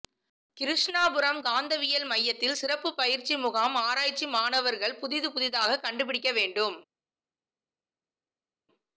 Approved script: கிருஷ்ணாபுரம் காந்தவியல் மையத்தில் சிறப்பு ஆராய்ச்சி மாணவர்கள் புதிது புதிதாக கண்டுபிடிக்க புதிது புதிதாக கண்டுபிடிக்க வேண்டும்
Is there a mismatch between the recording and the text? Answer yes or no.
yes